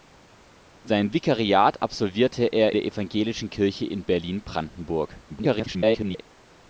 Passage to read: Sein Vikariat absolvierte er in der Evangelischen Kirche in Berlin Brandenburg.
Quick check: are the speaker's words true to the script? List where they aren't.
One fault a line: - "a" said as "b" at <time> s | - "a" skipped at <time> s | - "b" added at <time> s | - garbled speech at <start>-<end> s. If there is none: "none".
- "in" skipped at 2.8 s
- garbled speech at 5.3-6.2 s